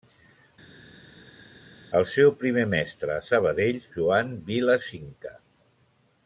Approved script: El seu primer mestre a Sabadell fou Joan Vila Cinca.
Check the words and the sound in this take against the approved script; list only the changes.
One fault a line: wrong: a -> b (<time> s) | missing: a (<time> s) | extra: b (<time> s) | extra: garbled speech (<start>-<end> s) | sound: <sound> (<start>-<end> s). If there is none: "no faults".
missing: fou (3.8 s)